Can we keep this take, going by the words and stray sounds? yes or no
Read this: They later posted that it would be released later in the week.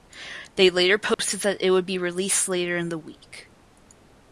no